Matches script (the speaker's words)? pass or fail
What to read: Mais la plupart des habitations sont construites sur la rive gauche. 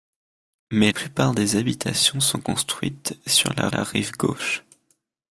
fail